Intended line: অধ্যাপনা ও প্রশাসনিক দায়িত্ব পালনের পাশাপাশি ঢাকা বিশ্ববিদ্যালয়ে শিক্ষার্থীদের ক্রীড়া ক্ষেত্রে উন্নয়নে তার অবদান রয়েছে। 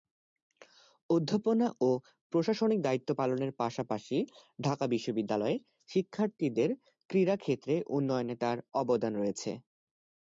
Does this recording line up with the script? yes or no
yes